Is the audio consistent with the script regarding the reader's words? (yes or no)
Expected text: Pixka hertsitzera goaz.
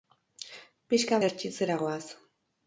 yes